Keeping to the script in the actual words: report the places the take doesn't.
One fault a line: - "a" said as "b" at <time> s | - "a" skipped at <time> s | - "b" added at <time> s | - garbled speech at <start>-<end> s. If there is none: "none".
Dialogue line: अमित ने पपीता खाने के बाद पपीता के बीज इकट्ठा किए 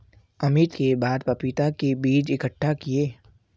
- "ने पपीता खाने" skipped at 0.8 s